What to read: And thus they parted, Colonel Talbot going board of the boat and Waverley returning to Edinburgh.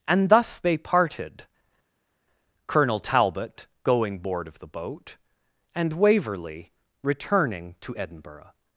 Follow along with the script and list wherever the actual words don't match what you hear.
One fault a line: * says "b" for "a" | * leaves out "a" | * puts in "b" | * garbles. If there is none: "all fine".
all fine